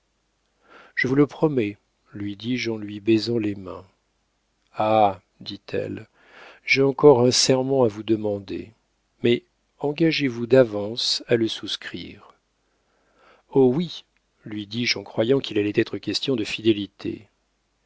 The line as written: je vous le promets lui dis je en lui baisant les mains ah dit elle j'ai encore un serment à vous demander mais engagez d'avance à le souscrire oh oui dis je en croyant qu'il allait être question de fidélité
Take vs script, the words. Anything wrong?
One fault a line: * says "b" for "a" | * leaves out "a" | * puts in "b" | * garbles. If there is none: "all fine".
* puts in "vous"
* puts in "lui"